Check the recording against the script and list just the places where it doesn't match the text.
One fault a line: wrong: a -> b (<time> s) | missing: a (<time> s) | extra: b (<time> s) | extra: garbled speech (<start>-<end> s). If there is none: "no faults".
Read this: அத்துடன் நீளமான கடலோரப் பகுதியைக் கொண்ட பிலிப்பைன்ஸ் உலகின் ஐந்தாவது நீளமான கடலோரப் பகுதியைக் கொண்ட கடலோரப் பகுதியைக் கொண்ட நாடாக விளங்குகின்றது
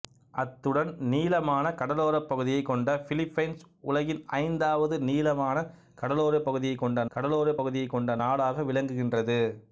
no faults